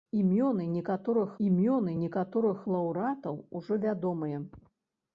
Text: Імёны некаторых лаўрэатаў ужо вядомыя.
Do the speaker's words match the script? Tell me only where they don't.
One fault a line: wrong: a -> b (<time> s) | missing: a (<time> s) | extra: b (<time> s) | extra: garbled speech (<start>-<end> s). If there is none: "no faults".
extra: імёны некаторых (1.5 s)